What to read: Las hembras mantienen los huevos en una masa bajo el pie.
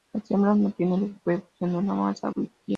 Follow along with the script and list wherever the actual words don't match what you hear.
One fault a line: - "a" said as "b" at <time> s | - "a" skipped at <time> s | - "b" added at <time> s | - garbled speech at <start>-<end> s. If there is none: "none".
- "bajo" skipped at 2.3 s